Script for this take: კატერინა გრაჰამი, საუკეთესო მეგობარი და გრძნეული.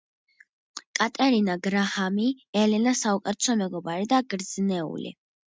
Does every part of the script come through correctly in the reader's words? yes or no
no